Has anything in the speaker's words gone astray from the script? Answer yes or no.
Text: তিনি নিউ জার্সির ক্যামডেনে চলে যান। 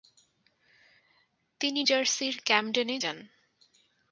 yes